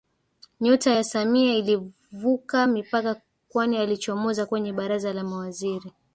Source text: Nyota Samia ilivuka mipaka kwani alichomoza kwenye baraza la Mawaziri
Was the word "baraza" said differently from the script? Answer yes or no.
no